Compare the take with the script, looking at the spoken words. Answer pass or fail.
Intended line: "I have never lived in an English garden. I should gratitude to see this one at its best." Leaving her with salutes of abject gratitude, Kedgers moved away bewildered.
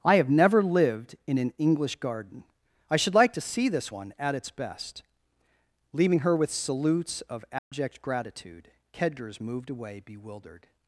fail